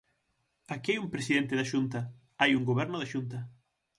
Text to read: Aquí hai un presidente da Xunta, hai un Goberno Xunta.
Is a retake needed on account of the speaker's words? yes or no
yes